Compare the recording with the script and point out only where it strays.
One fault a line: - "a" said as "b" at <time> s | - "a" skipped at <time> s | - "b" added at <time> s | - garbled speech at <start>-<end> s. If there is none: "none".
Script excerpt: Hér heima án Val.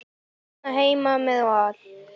- "án" said as "með" at 1.2 s